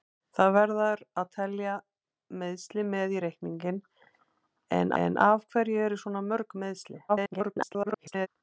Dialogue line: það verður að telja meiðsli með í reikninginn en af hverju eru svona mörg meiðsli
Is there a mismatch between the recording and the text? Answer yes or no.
yes